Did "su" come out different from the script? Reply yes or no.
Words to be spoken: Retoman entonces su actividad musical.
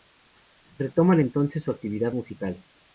no